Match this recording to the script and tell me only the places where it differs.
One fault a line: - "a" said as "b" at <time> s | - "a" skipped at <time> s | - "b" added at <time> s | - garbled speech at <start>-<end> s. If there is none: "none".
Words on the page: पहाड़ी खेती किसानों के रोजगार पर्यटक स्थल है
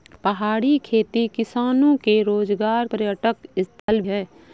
none